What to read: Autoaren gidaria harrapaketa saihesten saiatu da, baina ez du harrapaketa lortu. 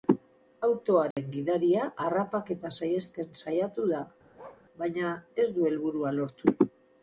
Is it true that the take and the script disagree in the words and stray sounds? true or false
true